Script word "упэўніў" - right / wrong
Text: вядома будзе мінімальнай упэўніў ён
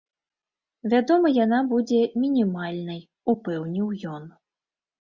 right